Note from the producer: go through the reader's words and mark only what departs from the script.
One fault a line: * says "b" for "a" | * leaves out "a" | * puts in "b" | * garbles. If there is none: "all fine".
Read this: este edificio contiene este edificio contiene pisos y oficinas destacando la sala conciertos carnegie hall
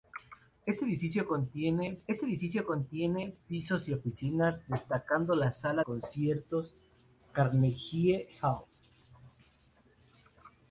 all fine